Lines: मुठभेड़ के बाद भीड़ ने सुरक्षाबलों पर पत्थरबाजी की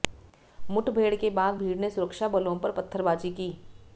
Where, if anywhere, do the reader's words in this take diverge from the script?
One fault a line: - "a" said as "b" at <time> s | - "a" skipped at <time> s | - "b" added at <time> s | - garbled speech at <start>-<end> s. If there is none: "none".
none